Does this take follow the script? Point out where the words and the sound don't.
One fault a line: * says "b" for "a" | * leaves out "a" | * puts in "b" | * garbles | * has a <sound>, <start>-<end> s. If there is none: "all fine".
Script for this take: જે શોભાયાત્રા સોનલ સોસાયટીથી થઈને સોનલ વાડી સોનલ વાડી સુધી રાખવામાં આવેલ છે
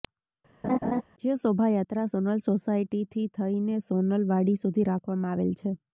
* has a laugh, 0.6-1.0 s
* leaves out "સોનલ વાડી"